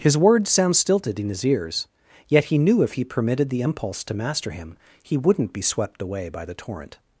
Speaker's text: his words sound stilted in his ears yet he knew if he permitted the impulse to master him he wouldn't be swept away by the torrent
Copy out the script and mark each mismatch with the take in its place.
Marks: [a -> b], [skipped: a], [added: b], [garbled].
his words sound stilted in his ears yet he knew if he permitted the impulse to master him he wouldn't be swept away by the torrent